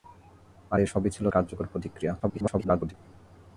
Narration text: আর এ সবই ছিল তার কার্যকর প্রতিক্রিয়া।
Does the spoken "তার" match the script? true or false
false